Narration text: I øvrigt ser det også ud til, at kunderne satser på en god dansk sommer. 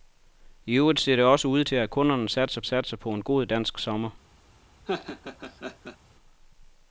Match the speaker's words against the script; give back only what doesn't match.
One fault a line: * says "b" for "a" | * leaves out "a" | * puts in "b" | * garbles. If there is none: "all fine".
* puts in "satser"